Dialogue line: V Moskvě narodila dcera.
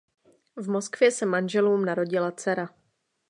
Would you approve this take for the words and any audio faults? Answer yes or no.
no